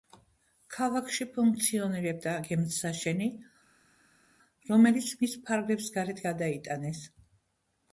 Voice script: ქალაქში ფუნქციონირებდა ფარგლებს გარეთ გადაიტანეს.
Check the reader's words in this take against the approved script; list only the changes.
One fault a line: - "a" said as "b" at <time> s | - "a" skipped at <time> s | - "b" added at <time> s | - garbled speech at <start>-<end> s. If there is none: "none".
- "გემთსაშენი რომელიც მის" added at 2.4 s